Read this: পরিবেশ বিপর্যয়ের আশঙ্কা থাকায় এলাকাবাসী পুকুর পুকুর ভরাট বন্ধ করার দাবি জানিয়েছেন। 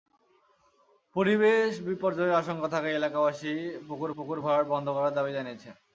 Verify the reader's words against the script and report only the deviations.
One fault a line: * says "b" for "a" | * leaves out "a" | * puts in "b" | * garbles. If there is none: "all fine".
all fine